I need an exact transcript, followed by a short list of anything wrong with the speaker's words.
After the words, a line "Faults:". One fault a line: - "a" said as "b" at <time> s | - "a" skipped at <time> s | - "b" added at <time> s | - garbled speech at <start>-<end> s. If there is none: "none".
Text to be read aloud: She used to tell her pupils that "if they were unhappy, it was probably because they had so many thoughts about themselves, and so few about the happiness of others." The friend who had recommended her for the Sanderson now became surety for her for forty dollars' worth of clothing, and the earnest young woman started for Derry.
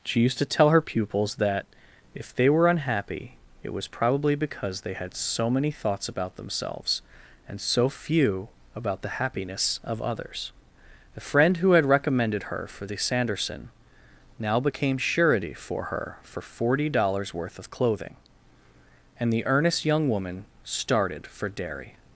She used to tell her pupils that "if they were unhappy, it was probably because they had so many thoughts about themselves, and so few about the happiness of others." The friend who had recommended her for the Sanderson now became surety for her for forty dollars' worth of clothing, and the earnest young woman started for Derry.
Faults:
none